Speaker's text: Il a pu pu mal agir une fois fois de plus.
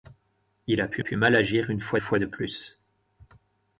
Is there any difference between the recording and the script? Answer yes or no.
no